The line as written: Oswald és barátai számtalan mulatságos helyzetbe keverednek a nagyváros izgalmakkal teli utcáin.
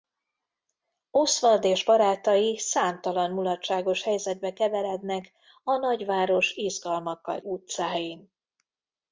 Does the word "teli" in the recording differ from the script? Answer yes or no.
yes